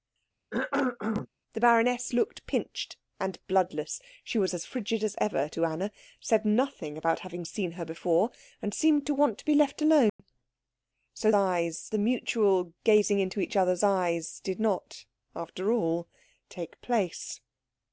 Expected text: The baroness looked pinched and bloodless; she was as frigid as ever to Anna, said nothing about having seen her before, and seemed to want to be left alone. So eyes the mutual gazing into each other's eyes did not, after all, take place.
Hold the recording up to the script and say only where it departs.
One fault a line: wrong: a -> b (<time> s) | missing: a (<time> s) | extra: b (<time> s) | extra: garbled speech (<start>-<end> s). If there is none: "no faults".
no faults